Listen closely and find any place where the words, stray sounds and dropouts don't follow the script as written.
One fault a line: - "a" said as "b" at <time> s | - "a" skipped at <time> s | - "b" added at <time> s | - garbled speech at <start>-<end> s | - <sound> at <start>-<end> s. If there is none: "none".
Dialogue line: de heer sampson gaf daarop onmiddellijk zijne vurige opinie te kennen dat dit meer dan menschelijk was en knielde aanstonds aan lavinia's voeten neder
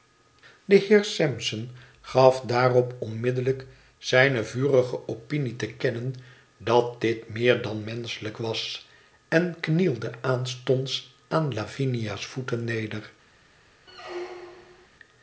- squeak at 13.9-14.9 s